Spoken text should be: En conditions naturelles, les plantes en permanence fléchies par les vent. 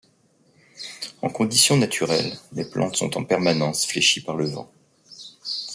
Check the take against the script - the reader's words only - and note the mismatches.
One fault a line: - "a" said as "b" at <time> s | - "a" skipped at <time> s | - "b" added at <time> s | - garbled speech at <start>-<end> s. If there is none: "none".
- "sont" added at 3.0 s
- "les" said as "le" at 4.3 s